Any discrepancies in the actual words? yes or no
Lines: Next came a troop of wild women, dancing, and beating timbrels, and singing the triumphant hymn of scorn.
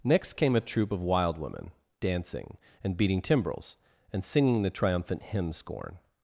yes